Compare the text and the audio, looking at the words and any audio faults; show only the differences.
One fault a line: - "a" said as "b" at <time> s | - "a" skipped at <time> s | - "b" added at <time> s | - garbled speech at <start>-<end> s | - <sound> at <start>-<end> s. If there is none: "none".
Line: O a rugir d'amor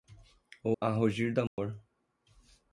- dropout at 1.5-1.6 s